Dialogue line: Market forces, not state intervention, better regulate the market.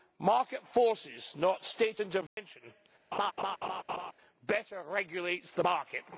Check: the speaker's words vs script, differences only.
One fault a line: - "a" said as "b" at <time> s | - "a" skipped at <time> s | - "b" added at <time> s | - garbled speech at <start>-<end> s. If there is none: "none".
none